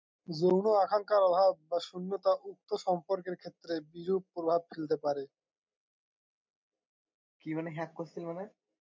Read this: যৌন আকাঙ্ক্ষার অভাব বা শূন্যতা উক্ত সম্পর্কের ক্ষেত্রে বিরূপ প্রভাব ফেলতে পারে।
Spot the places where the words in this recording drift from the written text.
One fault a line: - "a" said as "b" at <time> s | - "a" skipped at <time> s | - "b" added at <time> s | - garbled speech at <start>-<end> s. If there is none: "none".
none